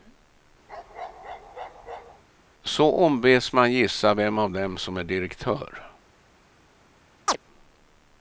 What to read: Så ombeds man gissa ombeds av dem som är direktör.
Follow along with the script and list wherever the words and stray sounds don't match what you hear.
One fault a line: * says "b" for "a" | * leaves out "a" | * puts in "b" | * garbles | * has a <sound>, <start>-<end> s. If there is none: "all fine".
* has a bark, 0.7-2.2 s
* says "vem" for "ombeds"
* has a chirp, 7.3-7.4 s